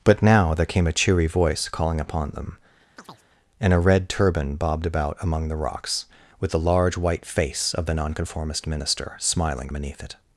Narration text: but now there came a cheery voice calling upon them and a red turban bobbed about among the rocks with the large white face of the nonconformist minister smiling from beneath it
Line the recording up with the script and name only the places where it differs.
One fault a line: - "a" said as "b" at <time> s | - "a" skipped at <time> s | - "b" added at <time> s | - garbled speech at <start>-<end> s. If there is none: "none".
- "from" skipped at 9.7 s